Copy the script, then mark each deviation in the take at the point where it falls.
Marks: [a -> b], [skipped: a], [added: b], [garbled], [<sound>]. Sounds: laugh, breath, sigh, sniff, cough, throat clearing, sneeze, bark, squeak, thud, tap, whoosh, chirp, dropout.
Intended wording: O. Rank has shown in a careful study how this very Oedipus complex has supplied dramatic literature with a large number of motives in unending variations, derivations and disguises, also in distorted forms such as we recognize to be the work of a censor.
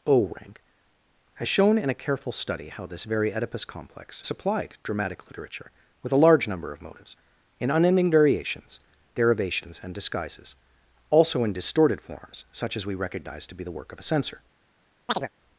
O. Rank has shown in a careful study how this very Oedipus complex [skipped: has] supplied dramatic literature with a large number of motives in unending variations, derivations and disguises, also in distorted forms such as we recognize to be the work of a censor. [chirp]